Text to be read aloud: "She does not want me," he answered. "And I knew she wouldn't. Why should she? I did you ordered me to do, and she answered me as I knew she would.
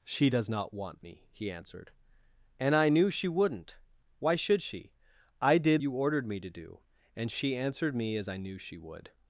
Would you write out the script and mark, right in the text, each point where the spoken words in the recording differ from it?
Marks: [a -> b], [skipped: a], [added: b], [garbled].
"She does not want me," he answered. "And I knew she wouldn't. Why should she? I did you ordered me to do, and she answered me as I knew she would.